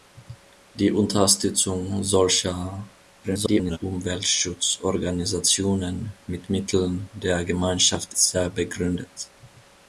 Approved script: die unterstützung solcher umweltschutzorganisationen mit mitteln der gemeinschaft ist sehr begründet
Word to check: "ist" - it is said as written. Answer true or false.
false